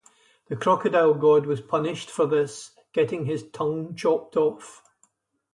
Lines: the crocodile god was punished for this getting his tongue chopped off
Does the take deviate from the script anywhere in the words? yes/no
no